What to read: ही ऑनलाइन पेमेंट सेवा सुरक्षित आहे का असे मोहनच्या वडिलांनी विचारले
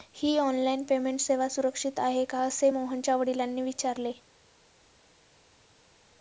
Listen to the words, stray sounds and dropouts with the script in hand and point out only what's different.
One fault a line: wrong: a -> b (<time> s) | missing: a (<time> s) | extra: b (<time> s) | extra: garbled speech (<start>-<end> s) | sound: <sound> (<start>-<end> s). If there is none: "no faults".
no faults